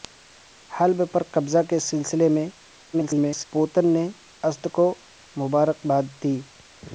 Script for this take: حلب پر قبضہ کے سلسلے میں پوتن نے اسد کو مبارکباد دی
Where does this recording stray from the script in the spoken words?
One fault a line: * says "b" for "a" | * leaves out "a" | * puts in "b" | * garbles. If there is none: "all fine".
* garbles